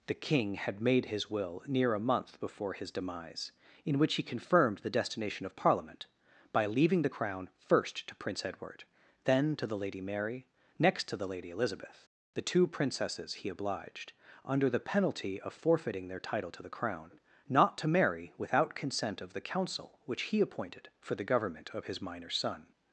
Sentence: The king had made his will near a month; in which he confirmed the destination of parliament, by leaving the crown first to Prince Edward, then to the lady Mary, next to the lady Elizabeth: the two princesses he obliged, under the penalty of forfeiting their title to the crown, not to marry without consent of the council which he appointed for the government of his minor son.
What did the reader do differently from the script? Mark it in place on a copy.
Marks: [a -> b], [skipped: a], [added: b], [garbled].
The king had made his will near a month; [added: before his demise] in which he confirmed the destination of parliament, by leaving the crown first to Prince Edward, then to the lady Mary, next to the lady Elizabeth: the two princesses he obliged, under the penalty of forfeiting their title to the crown, not to marry without consent of the council which he appointed for the government of his minor son.